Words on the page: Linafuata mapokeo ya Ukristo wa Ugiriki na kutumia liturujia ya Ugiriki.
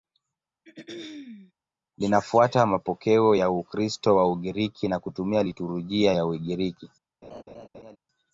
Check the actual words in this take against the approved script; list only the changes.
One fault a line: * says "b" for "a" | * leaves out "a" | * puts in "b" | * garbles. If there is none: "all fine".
all fine